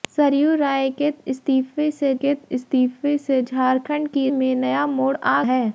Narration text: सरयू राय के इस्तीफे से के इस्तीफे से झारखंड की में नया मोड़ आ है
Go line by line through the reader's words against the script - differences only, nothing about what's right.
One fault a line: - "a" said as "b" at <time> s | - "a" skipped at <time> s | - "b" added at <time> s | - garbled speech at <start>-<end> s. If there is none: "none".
none